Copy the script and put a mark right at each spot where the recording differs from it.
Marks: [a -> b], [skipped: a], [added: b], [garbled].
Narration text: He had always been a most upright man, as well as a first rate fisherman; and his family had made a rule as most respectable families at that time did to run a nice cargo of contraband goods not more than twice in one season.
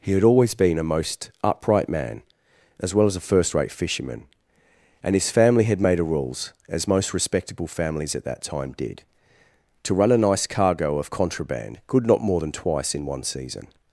He had always been a most upright man, as well as a first rate fisherman; and his family had made a [rule -> rules] as most respectable families at that time did to run a nice cargo of contraband [goods -> good] not more than twice in one season.